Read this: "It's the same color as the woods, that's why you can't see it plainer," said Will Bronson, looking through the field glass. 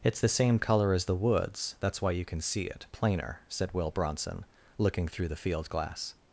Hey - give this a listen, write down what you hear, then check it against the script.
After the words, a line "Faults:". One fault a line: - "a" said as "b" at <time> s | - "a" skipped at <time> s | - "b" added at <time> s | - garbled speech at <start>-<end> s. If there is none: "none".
"It's the same color as the woods, that's why you can see it plainer," said Will Bronson, looking through the field glass.
Faults:
- "can't" said as "can" at 2.2 s